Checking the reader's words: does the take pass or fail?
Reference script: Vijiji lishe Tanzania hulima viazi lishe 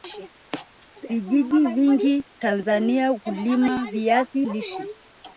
fail